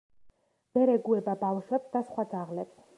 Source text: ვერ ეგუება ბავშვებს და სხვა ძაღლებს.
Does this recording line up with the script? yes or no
yes